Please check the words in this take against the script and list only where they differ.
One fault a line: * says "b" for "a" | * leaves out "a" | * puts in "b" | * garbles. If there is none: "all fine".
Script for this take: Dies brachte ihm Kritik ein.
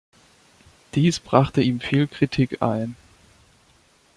* puts in "viel"